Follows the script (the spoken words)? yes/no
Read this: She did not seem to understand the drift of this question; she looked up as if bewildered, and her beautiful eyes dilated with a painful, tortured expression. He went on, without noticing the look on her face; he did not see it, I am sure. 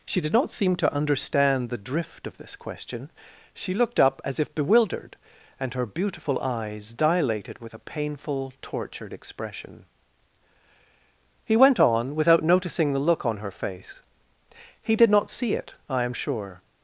yes